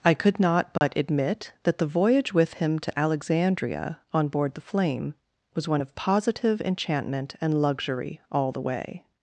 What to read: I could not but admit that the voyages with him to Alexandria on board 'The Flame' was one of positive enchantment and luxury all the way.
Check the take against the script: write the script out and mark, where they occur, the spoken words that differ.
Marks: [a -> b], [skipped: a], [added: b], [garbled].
I could not but admit that the [voyages -> voyage] with him to Alexandria on board 'The Flame' was one of positive enchantment and luxury all the way.